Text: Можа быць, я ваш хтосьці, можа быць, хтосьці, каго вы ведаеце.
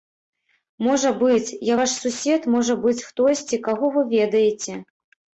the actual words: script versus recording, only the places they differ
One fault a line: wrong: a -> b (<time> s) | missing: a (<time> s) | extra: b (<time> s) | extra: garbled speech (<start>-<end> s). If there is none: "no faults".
wrong: хтосьці -> сусед (2.0 s)